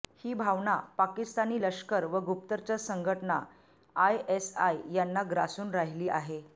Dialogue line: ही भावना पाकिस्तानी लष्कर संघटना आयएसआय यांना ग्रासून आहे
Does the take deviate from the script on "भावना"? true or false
false